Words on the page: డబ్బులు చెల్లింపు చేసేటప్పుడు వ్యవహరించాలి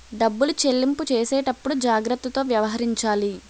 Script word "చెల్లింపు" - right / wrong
right